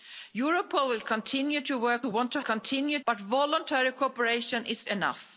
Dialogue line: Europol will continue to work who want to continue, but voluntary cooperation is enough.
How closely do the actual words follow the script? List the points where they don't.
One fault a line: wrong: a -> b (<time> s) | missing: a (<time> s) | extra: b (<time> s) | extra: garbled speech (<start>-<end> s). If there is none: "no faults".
no faults